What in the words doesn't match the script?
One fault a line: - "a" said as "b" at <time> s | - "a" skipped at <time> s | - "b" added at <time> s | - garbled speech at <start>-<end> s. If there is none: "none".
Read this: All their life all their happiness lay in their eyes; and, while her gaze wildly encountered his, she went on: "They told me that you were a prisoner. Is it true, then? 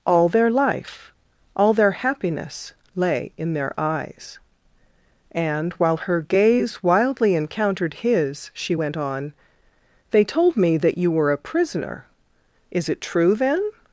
none